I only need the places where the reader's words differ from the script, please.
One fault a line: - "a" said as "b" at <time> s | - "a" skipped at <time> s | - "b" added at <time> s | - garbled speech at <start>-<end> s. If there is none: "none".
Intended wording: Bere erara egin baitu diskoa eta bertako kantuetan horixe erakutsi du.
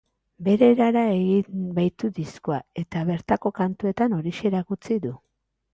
none